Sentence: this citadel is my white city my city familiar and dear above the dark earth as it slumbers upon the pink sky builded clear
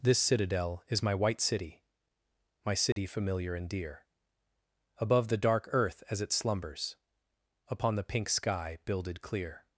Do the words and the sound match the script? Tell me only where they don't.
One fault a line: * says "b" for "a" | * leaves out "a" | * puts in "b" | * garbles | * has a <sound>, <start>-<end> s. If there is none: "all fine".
* has a dropout, 2.9-3.0 s